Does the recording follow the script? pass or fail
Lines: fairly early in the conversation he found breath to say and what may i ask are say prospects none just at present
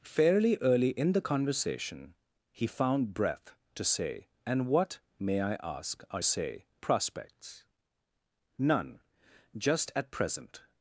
pass